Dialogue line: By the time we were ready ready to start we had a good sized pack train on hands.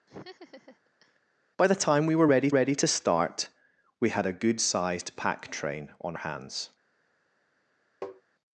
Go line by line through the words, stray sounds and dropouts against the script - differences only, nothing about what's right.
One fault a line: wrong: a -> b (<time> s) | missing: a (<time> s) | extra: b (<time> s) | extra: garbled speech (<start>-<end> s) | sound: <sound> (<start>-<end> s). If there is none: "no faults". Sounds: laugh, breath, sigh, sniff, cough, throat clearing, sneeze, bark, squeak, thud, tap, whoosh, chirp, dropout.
sound: laugh (0.1-1.2 s)
sound: tap (8.0-8.2 s)